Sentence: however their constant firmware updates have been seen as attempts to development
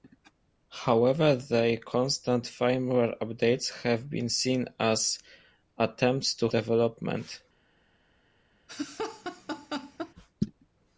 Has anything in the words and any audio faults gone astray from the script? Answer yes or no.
yes